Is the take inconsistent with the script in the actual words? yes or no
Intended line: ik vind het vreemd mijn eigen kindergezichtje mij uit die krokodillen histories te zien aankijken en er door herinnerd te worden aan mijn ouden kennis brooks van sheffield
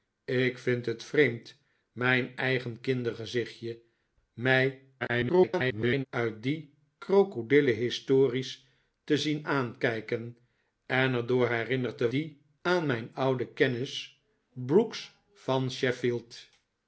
yes